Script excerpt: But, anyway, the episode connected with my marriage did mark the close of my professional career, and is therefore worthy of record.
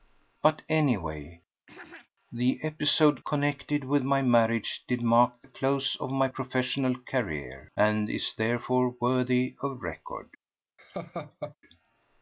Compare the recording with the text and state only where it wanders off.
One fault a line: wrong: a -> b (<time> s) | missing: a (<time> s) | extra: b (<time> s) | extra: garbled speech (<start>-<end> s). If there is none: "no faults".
no faults